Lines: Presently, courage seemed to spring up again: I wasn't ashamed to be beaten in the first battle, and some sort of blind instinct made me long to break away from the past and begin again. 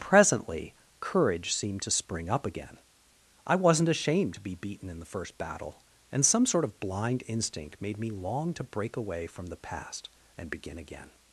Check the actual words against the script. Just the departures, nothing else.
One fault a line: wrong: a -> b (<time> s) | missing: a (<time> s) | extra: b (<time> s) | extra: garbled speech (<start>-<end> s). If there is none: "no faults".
no faults